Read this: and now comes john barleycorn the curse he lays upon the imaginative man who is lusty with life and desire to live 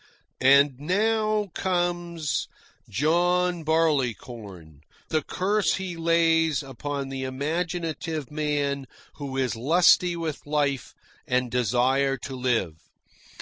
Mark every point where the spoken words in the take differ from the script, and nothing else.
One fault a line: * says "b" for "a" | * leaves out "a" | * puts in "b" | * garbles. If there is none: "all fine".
all fine